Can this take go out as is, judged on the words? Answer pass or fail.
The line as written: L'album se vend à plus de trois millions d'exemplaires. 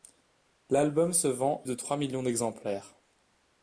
fail